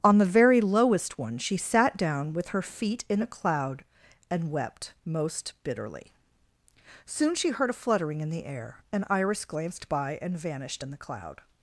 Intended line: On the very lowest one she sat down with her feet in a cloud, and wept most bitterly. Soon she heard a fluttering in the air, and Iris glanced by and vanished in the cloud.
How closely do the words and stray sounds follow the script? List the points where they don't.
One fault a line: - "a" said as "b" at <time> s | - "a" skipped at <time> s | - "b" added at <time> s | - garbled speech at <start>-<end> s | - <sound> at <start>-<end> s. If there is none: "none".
none